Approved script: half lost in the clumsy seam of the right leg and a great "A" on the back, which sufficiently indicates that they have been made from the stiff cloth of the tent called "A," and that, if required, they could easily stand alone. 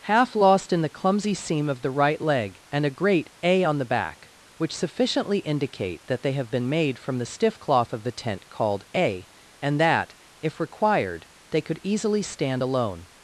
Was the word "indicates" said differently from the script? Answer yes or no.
yes